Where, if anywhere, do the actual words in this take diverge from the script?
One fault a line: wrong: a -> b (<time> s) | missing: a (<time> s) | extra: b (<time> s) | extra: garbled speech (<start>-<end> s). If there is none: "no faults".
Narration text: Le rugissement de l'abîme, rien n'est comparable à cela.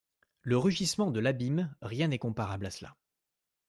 no faults